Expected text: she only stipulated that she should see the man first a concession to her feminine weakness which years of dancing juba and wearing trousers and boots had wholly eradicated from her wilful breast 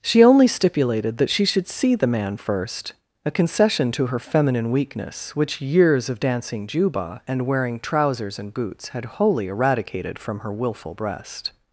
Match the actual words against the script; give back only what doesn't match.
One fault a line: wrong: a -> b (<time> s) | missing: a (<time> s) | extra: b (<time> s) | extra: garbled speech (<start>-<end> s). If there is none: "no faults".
no faults